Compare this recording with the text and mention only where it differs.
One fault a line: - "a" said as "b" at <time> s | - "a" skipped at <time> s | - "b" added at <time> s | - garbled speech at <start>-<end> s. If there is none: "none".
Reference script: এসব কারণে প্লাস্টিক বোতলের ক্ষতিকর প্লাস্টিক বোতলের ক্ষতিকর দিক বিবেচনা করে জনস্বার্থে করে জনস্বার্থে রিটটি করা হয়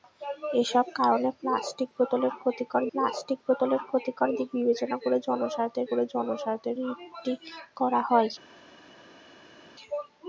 none